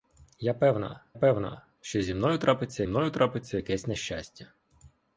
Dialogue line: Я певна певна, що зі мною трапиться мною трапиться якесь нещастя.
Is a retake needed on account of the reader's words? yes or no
no